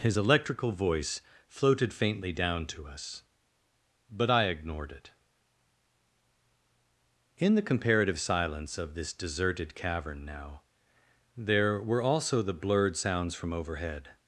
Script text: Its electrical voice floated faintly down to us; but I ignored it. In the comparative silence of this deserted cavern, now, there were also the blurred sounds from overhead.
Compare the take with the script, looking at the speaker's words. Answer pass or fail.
fail